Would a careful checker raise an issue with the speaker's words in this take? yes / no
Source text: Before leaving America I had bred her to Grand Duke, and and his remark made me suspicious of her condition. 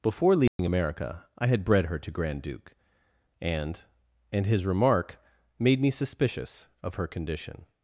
no